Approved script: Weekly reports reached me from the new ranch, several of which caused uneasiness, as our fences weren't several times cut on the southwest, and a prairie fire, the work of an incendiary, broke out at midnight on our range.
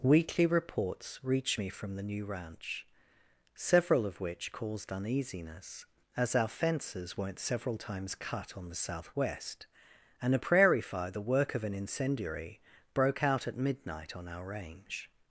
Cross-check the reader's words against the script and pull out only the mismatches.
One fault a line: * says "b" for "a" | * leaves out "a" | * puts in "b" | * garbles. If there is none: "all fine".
all fine